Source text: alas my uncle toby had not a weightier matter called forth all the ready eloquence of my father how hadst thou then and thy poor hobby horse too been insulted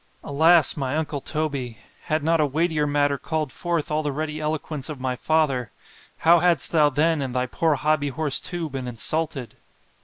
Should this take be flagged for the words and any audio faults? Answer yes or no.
no